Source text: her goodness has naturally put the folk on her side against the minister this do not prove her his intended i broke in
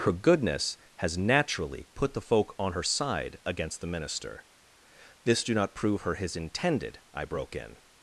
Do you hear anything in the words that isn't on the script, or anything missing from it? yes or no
no